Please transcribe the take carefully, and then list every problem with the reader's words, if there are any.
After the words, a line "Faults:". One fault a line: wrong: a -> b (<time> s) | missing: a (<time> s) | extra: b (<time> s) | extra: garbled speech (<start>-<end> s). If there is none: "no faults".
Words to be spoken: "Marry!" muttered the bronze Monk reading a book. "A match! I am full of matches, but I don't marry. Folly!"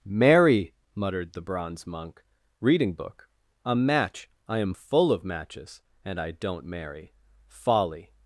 "Marry!" muttered the bronze Monk reading book. "A match! I am full of matches, and I don't marry. Folly!"
Faults:
missing: a (2.9 s)
wrong: but -> and (6.0 s)